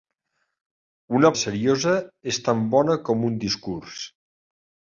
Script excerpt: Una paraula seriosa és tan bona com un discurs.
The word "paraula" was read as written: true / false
false